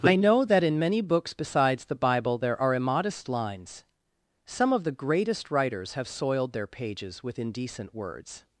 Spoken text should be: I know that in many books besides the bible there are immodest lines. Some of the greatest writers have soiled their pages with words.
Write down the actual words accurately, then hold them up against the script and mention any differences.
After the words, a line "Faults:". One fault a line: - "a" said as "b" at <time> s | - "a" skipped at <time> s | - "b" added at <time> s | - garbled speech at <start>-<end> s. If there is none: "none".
I know that in many books besides the bible there are immodest lines. Some of the greatest writers have soiled their pages with indecent words.
Faults:
- "indecent" added at 7.4 s